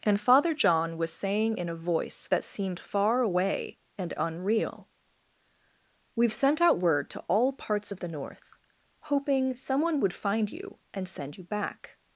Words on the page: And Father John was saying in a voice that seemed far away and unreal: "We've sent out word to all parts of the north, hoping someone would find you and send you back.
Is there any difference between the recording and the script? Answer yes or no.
no